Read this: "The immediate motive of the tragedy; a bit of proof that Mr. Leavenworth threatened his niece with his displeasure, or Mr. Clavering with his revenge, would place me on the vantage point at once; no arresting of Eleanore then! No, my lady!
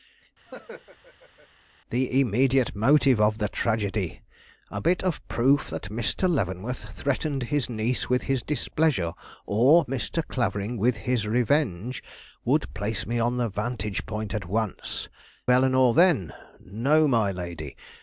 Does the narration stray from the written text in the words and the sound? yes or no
yes